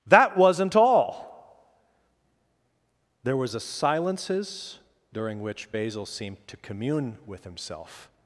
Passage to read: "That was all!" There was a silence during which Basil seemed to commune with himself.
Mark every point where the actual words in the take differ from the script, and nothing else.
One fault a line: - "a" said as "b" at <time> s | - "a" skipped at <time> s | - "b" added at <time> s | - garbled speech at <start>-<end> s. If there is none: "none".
- "was" said as "wasn't" at 0.4 s
- "silence" said as "silences" at 3.6 s